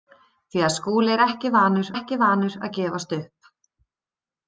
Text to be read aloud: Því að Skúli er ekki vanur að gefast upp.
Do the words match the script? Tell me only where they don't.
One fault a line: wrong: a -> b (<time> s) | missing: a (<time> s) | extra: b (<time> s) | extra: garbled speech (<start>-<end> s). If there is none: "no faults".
extra: ekki vanur (1.9 s)